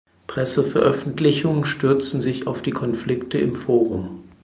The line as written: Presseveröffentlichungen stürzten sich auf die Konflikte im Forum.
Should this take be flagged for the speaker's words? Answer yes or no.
no